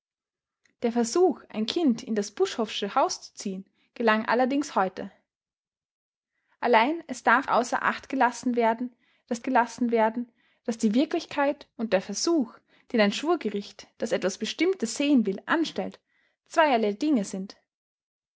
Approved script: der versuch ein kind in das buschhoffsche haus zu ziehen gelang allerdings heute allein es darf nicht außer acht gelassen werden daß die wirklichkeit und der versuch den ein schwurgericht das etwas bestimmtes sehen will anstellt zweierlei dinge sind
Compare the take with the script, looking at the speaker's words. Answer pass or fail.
fail